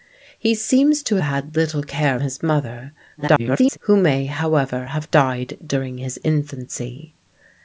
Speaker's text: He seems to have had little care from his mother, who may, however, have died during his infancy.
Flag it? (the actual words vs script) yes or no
yes